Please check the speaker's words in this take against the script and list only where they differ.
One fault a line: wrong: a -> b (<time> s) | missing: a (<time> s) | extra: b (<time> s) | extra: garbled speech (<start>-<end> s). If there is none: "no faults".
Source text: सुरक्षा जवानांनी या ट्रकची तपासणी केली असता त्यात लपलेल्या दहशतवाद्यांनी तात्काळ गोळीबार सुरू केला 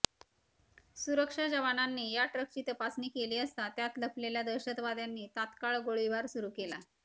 no faults